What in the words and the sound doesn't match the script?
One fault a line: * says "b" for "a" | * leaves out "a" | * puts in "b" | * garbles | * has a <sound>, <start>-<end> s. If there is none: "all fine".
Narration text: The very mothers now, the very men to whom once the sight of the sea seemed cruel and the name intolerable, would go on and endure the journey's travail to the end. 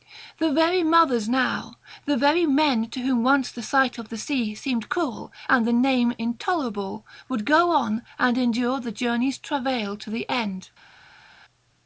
all fine